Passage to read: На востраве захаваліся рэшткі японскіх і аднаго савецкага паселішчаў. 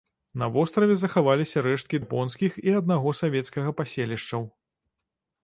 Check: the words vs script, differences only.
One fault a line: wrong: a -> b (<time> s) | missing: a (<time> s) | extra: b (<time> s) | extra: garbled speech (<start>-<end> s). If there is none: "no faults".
no faults